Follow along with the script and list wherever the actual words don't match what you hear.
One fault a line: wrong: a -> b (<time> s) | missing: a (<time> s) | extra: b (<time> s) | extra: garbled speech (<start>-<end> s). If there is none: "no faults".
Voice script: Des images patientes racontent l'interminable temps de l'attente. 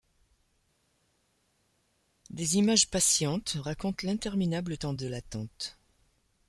no faults